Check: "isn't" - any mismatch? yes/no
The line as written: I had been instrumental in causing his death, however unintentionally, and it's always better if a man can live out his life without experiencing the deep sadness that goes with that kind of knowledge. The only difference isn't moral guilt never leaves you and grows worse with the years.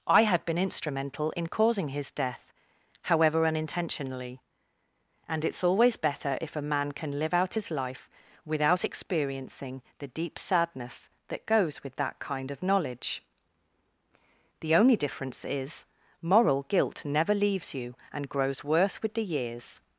yes